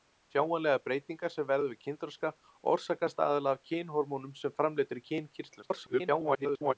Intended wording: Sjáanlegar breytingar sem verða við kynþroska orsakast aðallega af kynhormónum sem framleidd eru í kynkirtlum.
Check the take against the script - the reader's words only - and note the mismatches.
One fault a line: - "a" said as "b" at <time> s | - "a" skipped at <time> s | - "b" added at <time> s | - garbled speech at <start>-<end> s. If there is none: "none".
- garbled speech at 5.6-6.7 s